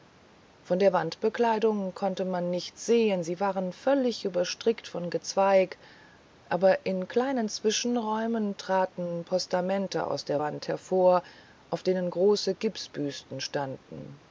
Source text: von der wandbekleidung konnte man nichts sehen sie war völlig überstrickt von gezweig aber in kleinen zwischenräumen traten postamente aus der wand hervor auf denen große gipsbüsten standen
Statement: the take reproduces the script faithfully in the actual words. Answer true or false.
true